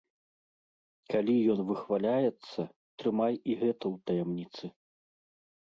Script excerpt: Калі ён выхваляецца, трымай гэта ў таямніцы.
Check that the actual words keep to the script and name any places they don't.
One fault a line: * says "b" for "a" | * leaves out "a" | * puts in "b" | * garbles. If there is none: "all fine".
* puts in "і"